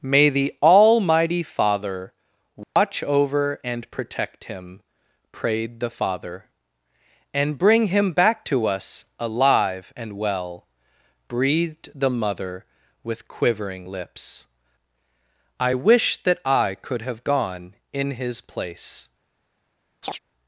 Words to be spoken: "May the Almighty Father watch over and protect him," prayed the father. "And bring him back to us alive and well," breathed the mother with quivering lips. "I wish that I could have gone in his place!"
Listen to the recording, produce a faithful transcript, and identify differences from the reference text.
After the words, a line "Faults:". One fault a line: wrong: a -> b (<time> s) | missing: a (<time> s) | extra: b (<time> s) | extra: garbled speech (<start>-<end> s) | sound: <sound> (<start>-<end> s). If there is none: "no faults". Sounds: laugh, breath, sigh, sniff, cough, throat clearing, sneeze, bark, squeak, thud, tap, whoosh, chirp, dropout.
"May the Almighty Father watch over and protect him," prayed the father. "And bring him back to us alive and well," breathed the mother with quivering lips. "I wish that I could have gone in his place!"
Faults:
sound: dropout (2.6-2.8 s)
sound: chirp (20.0-20.2 s)